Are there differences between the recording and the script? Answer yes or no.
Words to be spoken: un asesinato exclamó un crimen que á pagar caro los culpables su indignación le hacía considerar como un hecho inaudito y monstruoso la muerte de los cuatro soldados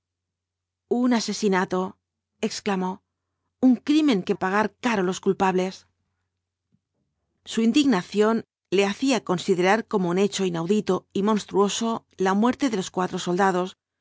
no